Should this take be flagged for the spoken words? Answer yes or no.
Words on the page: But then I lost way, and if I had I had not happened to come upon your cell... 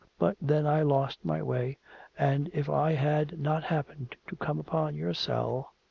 yes